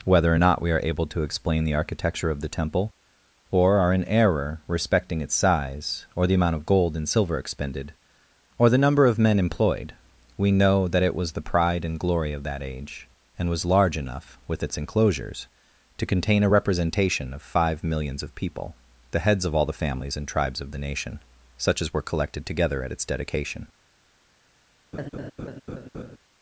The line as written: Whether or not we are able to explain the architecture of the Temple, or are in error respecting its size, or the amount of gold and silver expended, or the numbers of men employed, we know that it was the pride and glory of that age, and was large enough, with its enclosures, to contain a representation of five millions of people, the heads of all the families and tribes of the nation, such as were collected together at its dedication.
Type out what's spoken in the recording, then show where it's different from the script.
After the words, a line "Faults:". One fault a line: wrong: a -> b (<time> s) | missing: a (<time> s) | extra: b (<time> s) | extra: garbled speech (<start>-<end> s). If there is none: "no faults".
Whether or not we are able to explain the architecture of the Temple, or are in error respecting its size, or the amount of gold and silver expended, or the number of men employed, we know that it was the pride and glory of that age, and was large enough, with its enclosures, to contain a representation of five millions of people, the heads of all the families and tribes of the nation, such as were collected together at its dedication.
Faults:
wrong: numbers -> number (8.8 s)